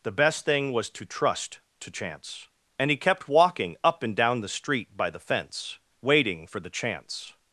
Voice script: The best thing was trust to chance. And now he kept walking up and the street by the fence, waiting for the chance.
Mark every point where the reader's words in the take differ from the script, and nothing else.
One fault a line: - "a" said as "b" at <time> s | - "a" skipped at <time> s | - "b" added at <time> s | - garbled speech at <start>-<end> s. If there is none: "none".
- "to" added at 0.9 s
- "now" skipped at 2.9 s
- "down" added at 4.2 s